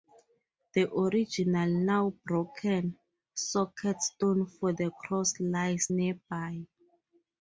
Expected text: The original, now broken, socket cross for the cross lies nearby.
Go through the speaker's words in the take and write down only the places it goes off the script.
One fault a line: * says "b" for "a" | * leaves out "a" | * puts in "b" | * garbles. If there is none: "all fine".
* says "stone" for "cross"